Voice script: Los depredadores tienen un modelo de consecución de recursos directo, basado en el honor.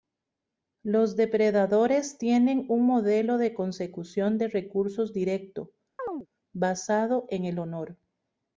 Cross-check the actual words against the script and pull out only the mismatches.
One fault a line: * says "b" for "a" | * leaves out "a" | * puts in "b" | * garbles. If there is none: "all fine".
all fine